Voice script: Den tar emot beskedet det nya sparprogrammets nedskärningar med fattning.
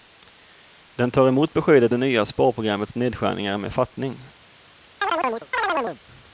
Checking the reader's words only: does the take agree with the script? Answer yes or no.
yes